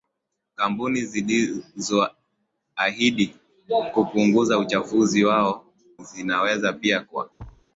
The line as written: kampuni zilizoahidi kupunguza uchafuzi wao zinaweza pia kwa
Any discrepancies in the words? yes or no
no